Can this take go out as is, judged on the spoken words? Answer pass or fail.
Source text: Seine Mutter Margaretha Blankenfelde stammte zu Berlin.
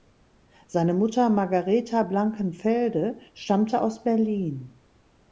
fail